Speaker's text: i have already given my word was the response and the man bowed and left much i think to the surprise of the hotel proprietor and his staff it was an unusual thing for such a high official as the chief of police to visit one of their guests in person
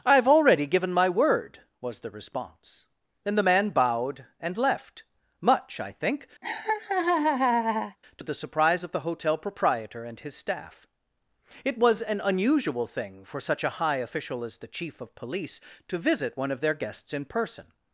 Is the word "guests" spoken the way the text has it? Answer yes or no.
yes